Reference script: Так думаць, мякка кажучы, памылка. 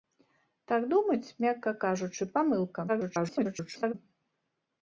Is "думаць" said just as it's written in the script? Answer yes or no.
yes